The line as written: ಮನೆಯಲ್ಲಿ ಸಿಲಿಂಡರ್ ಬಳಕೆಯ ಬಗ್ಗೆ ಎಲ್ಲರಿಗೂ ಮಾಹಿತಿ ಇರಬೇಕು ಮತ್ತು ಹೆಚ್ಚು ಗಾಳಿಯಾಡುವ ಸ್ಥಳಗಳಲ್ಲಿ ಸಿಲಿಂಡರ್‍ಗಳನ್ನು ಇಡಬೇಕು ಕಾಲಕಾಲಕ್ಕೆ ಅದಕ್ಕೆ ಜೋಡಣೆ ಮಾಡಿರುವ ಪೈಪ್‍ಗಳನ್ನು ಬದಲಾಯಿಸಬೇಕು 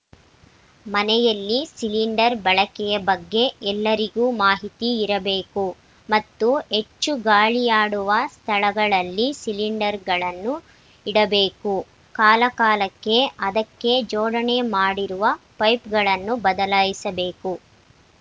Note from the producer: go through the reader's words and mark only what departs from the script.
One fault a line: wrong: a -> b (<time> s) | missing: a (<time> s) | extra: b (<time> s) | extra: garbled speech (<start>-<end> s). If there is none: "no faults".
no faults